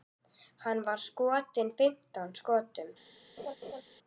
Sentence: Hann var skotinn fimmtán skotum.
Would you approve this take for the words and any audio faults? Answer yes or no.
no